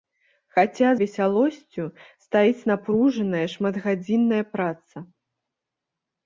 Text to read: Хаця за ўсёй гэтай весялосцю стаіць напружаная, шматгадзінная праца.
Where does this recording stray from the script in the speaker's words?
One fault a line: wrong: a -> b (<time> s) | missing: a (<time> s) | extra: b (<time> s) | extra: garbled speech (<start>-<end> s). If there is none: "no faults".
missing: за ўсёй гэтай (0.9 s)